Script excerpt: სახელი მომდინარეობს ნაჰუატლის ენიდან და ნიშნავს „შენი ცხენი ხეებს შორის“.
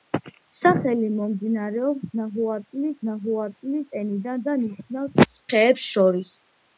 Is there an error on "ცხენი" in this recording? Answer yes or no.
yes